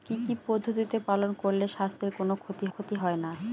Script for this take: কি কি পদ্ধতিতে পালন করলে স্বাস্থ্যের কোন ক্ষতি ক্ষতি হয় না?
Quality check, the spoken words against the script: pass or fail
pass